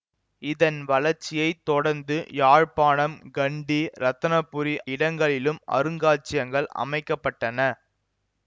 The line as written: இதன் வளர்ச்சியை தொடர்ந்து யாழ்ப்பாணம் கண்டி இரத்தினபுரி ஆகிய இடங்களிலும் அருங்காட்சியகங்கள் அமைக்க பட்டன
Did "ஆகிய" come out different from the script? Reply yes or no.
yes